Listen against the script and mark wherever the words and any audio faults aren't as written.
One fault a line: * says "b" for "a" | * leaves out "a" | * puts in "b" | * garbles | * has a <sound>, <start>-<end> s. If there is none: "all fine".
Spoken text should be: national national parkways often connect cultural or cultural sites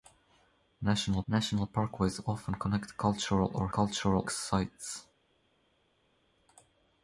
all fine